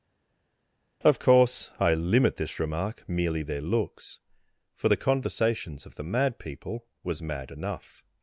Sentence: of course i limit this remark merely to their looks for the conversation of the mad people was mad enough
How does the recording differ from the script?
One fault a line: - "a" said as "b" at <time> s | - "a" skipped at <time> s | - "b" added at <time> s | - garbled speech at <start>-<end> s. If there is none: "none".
- "to" skipped at 3.4 s
- "conversation" said as "conversations" at 5.0 s